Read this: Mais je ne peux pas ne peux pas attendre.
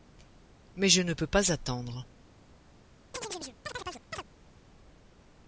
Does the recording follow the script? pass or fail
fail